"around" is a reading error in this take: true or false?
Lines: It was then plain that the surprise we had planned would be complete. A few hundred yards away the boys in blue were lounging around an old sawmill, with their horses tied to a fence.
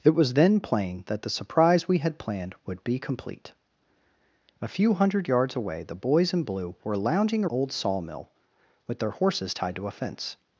true